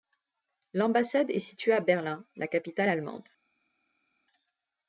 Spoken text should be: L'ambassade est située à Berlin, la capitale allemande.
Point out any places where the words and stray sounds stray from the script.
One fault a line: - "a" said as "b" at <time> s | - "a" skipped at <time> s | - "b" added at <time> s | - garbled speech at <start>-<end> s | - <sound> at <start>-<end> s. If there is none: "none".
none